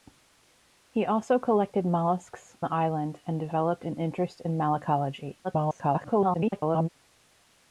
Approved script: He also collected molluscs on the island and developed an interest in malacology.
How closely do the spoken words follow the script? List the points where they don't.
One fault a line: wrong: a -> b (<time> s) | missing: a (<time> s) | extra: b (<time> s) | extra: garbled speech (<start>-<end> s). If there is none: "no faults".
missing: on (2.5 s)
extra: garbled speech (5.4-6.9 s)